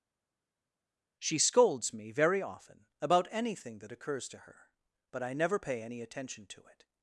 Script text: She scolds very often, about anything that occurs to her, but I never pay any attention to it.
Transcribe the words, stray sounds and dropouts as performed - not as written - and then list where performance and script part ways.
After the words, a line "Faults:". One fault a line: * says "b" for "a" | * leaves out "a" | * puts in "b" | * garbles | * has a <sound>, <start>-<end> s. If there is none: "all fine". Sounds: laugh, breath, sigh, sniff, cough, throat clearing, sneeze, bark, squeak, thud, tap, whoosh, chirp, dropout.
She scolds me very often, about anything that occurs to her, but I never pay any attention to it.
Faults:
* puts in "me"